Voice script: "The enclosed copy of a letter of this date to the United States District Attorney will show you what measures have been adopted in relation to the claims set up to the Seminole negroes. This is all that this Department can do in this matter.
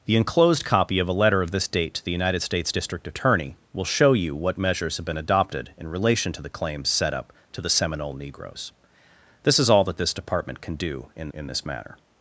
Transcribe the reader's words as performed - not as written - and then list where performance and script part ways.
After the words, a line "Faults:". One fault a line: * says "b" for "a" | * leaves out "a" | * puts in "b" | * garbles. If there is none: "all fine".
"The enclosed copy of a letter of this date to the United States District Attorney will show you what measures have been adopted in relation to the claims set up to the Seminole negroes. This is all that this Department can do in in this matter.
Faults:
* puts in "in"